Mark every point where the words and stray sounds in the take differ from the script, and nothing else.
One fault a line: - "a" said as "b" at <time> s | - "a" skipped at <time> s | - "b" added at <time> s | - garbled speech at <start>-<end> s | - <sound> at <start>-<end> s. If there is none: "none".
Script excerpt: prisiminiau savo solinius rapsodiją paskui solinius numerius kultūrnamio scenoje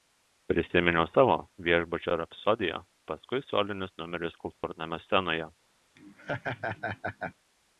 - "solinius" said as "viešbučio" at 1.7 s
- dropout at 4.5-4.6 s
- laugh at 6.0-7.4 s